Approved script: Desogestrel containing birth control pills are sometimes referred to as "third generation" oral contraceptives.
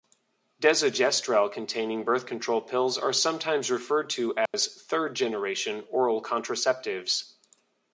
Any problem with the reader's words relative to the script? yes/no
no